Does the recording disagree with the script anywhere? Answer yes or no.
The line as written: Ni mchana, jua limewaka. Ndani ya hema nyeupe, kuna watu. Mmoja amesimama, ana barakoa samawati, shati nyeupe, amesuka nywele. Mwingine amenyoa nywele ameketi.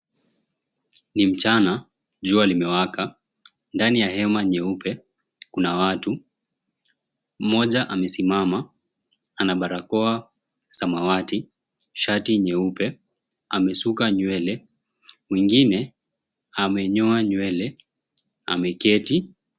no